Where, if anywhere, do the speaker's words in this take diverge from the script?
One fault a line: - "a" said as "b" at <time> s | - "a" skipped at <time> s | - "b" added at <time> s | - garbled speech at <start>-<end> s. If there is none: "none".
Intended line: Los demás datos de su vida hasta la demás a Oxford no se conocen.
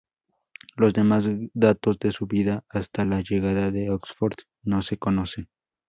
- "demás" said as "llegada" at 3.2 s